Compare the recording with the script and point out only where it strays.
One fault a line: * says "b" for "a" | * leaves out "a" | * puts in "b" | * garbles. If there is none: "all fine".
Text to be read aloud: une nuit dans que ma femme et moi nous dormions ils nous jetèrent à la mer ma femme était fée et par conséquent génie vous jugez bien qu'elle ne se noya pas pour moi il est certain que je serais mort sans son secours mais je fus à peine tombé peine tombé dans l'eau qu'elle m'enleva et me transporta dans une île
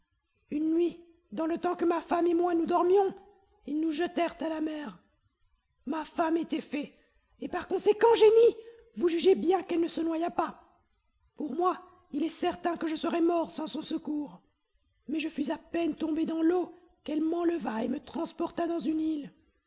* puts in "le temps"
* leaves out "peine tombé"